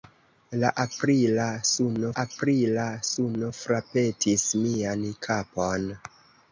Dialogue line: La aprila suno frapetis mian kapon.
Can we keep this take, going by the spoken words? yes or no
no